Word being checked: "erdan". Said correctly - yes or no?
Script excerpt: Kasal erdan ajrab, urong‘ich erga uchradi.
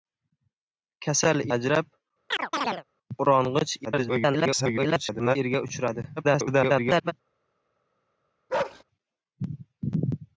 no